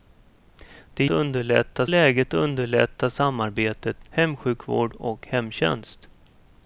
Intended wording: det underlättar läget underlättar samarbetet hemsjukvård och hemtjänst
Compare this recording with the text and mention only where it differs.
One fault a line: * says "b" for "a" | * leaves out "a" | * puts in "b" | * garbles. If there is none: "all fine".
all fine